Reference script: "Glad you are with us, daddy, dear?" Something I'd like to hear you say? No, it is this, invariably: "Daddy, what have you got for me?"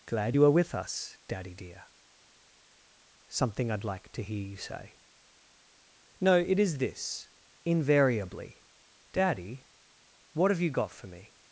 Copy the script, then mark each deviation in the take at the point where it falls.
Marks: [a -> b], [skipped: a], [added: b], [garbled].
"Glad you are with us, daddy, dear?" Something I'd like to hear you say? No, it is this, invariably: "Daddy, what have you got for me?"